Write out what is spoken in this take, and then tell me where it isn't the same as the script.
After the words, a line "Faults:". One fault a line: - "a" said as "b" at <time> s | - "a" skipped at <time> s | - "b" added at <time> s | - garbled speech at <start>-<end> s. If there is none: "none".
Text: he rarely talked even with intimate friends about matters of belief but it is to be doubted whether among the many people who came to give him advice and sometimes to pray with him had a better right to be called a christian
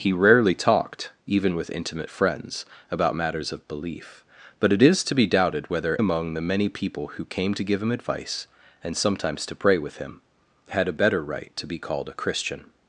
he rarely talked even with intimate friends about matters of belief but it is to be doubted whether among the many people who came to give him advice and sometimes to pray with him had a better right to be called a christian
Faults:
none